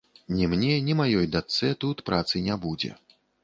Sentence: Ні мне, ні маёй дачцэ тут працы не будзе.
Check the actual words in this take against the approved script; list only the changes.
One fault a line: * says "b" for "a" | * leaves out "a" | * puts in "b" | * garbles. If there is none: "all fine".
all fine